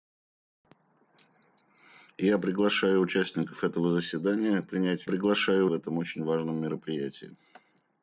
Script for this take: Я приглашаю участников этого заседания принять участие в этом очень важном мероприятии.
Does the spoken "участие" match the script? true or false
false